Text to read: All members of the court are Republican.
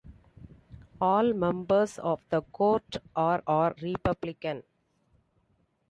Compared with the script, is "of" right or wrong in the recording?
right